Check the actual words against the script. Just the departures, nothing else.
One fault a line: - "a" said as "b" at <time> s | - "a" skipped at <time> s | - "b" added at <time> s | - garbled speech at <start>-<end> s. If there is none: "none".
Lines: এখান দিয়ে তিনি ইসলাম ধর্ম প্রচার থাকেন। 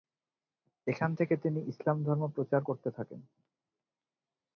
- "দিয়ে" said as "থেকে" at 1.1 s
- "করতে" added at 2.6 s